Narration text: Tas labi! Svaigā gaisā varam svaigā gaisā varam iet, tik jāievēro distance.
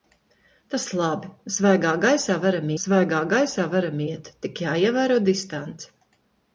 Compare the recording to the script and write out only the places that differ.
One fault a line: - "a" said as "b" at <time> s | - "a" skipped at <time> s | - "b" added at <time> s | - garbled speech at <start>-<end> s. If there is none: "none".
none